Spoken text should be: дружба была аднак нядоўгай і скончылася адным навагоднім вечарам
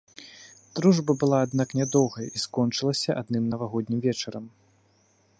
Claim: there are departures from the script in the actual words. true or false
false